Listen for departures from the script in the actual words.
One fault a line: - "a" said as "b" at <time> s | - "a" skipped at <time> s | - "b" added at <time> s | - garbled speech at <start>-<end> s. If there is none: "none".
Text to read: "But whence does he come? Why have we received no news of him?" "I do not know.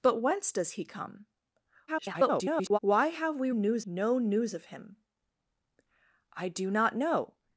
- garbled speech at 1.9-2.8 s
- "received" said as "news" at 3.5 s